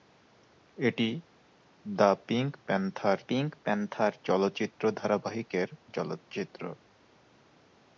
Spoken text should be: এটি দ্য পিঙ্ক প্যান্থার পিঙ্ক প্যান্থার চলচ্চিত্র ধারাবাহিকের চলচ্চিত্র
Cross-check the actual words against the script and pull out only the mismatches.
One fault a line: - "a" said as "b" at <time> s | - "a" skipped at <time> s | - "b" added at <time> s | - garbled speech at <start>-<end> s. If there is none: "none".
none